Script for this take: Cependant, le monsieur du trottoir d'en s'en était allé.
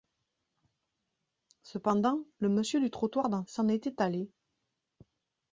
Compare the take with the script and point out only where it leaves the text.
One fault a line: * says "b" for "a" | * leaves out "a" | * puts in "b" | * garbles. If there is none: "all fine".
all fine